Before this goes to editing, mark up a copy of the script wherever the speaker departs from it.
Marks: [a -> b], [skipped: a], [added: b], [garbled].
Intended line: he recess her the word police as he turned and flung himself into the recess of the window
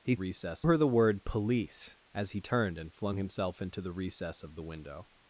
he recess her the word police as he turned and flung himself into the recess of the window